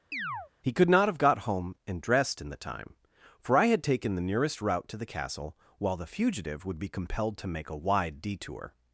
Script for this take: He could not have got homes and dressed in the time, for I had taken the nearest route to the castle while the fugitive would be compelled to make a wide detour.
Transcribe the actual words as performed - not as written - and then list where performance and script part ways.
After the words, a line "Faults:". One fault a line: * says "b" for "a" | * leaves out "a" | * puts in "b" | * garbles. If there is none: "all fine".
He could not have got home and dressed in the time, for I had taken the nearest route to the castle while the fugitive would be compelled to make a wide detour.
Faults:
* says "home" for "homes"